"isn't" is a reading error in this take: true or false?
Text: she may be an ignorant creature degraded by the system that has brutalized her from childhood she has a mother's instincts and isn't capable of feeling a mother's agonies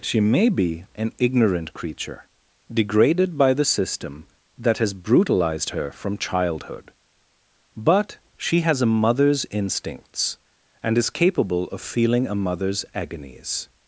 true